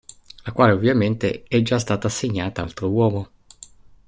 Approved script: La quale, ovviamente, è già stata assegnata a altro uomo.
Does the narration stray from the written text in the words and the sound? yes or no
no